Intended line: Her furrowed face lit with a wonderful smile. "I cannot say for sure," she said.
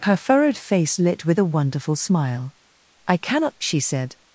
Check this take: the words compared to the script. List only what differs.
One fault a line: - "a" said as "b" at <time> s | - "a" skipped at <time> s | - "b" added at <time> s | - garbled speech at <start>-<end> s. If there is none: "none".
- "say for sure" skipped at 3.6 s